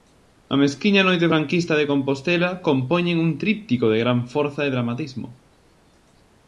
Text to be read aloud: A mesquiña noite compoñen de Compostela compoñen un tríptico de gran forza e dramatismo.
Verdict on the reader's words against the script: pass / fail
fail